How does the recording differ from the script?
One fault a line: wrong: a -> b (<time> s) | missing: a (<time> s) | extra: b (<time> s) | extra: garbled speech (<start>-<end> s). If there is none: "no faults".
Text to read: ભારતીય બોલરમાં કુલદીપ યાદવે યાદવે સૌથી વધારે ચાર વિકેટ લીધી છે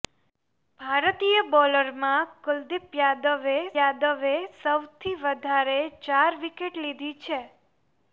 no faults